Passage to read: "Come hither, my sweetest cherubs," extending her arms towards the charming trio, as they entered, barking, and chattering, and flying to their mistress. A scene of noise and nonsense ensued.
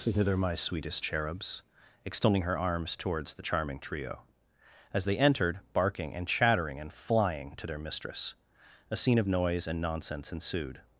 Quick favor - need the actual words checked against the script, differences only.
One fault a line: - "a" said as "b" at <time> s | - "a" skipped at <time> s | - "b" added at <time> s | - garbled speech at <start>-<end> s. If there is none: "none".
- "Come" skipped at 0.1 s